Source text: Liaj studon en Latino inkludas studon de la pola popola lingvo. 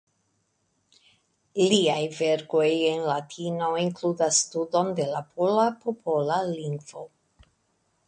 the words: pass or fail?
fail